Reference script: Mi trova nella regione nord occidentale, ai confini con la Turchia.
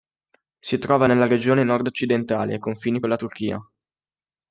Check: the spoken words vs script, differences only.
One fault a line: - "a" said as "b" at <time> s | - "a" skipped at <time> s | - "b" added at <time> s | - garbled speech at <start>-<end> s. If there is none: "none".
- "Mi" said as "Si" at 0.6 s